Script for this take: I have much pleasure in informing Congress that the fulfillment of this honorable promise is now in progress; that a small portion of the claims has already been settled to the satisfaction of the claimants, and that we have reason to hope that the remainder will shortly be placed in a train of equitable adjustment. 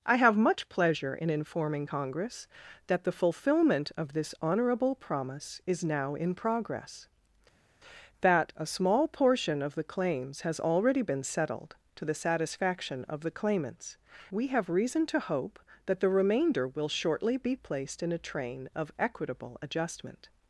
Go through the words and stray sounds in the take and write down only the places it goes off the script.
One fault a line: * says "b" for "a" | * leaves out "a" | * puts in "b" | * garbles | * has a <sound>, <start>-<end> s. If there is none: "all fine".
* leaves out "and that"